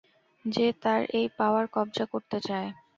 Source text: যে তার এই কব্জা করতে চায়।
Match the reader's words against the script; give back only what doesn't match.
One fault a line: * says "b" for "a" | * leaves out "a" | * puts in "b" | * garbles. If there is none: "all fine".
* puts in "পাওয়ার"